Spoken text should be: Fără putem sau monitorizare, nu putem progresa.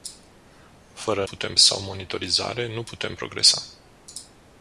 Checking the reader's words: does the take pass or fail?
pass